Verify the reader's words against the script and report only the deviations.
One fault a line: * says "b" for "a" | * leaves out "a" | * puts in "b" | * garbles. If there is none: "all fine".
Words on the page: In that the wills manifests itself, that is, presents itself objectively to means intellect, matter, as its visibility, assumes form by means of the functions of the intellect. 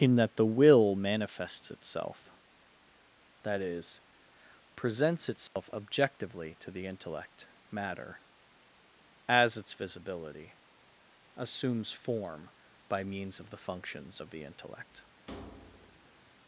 * says "will" for "wills"
* says "the" for "means"